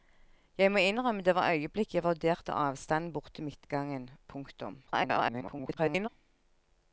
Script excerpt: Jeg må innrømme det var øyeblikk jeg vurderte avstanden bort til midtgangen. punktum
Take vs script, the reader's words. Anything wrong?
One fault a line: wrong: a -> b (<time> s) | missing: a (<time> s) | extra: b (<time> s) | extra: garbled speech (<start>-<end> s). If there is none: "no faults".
extra: garbled speech (4.9-6.1 s)